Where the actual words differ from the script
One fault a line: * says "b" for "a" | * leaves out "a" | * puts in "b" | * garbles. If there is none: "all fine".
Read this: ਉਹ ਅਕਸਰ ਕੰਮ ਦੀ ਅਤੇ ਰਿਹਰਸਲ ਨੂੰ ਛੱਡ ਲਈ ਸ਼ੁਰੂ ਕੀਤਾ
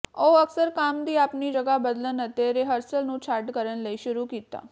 * puts in "ਆਪਣੀ ਜਗ੍ਹਾ ਬਦਲਣ"
* puts in "ਕਰਨ"